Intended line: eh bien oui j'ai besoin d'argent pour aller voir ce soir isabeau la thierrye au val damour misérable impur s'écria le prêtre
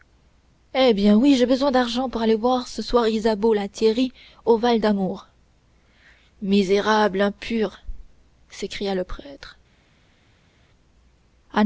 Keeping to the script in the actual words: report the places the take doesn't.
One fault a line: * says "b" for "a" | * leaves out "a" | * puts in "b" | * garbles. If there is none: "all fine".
all fine